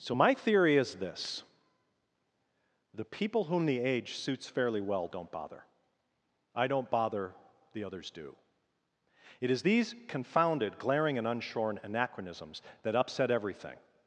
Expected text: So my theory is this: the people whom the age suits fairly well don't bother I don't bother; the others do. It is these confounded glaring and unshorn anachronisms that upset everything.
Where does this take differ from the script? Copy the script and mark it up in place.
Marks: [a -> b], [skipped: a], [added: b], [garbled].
So my theory is this: the people whom the age suits fairly well don't bother I don't bother; the others do. It is these confounded glaring and unshorn anachronisms that upset everything.